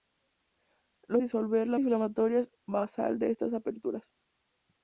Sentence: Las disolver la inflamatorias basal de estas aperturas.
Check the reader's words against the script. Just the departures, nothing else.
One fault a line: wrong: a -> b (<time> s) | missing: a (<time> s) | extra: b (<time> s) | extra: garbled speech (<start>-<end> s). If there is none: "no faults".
no faults